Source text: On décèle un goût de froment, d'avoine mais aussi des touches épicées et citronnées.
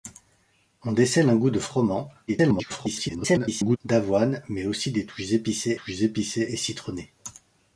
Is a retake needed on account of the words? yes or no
yes